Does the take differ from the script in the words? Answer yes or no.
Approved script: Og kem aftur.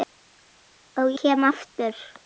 no